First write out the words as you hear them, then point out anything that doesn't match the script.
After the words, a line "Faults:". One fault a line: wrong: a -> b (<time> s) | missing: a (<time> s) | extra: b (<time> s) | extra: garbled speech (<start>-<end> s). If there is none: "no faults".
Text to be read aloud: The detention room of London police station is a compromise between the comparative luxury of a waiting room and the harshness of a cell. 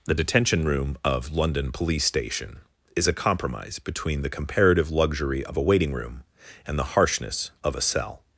The detention room of London police station is a compromise between the comparative luxury of a waiting room and the harshness of a cell.
Faults:
no faults